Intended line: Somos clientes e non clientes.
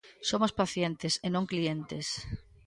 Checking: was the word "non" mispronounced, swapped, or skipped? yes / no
no